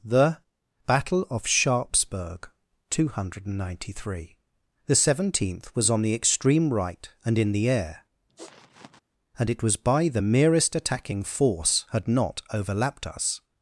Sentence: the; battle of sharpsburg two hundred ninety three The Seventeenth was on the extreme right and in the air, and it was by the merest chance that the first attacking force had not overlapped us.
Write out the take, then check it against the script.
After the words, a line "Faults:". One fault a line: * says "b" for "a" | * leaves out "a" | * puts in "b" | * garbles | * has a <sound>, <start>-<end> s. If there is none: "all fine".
the; battle of sharpsburg two hundred ninety three The Seventeenth was on the extreme right and in the air, and it was by the merest attacking force had not overlapped us.
Faults:
* has a sniff, 8.3-9.0 s
* leaves out "chance that the first"